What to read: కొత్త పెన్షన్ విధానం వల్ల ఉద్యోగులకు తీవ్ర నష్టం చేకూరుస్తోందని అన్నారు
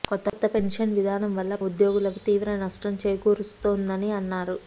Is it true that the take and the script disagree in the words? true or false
false